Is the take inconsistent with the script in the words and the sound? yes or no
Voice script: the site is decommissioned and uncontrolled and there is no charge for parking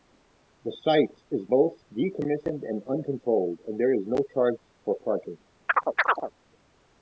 yes